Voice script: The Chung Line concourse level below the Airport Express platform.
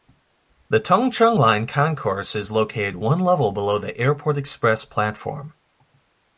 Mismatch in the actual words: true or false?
true